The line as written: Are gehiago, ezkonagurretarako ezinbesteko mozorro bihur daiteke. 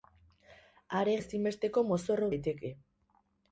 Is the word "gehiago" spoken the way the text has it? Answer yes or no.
no